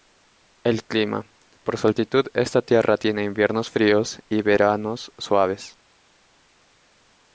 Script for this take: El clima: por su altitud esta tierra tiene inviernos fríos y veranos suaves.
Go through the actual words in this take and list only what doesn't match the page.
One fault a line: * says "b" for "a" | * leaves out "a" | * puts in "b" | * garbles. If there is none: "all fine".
all fine